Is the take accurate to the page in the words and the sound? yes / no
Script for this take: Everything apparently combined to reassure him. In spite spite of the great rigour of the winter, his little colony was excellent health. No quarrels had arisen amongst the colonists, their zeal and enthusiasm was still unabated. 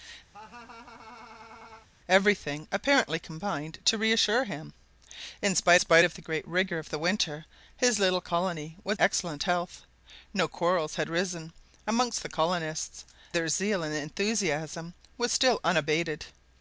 no